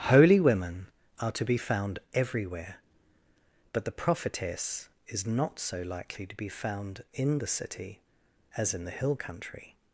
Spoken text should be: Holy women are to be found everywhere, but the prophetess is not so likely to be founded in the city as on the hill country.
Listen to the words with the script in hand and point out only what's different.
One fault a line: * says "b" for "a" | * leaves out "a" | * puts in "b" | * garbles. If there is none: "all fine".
* says "found" for "founded"
* says "in" for "on"